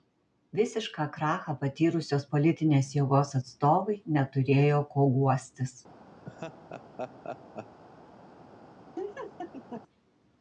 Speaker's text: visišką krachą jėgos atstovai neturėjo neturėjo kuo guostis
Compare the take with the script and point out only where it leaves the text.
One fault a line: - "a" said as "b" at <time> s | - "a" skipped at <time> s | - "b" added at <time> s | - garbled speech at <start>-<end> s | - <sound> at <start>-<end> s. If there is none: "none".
- "patyrusios politinės" added at 1.6 s
- "neturėjo" skipped at 4.8 s
- laugh at 6.2-7.8 s
- laugh at 9.0-9.8 s